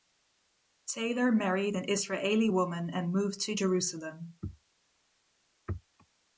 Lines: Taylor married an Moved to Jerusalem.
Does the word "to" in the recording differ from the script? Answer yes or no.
no